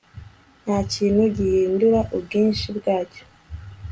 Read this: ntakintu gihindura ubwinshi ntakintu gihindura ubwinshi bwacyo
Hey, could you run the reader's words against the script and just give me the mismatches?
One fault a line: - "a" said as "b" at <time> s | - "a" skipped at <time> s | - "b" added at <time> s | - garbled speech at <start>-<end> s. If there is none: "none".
- "ntakintu gihindura ubwinshi" skipped at 2.7 s